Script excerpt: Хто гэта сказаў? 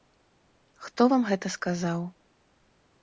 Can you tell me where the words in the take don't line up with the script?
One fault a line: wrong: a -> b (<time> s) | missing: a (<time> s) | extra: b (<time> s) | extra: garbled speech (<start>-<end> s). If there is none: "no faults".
extra: вам (1.1 s)